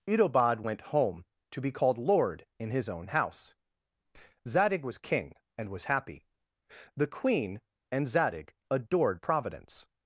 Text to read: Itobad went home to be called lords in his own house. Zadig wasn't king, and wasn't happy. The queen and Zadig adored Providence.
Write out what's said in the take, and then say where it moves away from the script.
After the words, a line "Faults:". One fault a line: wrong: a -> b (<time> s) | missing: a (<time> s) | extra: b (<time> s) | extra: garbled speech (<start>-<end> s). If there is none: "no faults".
Itobad went home to be called lord in his own house. Zadig was king, and was happy. The queen and Zadig adored Providence.
Faults:
wrong: lords -> lord (2.0 s)
wrong: wasn't -> was (4.8 s)
wrong: wasn't -> was (5.7 s)